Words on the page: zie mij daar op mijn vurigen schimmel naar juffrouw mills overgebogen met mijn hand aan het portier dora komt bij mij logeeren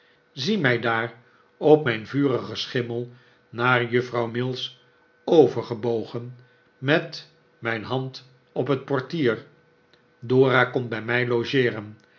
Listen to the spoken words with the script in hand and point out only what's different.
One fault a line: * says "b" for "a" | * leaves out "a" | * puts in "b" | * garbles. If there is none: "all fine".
* says "op" for "aan"